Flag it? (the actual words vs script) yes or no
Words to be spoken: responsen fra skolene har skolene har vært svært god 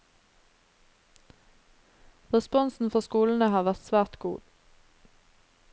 yes